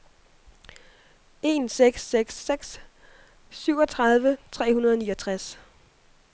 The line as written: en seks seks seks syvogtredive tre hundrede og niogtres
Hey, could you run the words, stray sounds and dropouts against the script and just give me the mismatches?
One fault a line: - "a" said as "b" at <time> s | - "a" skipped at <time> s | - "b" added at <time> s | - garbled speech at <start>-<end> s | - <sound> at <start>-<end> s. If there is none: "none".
none